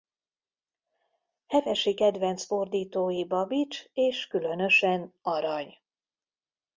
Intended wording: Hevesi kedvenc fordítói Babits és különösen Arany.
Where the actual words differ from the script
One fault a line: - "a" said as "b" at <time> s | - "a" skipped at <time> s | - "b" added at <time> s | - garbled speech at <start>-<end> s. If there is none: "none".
none